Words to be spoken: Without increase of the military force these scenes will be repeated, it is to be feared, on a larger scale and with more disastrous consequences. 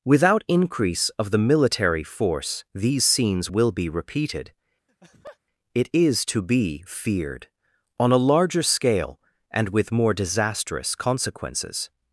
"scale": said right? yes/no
yes